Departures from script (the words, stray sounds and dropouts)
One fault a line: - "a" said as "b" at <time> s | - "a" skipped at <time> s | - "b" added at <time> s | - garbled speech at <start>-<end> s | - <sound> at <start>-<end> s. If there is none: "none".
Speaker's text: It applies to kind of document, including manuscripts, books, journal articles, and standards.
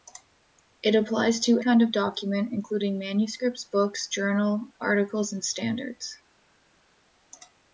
none